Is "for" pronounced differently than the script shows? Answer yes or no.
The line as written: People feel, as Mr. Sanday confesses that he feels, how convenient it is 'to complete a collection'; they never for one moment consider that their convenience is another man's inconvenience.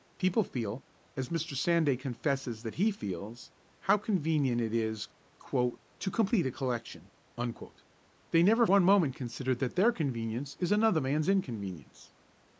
yes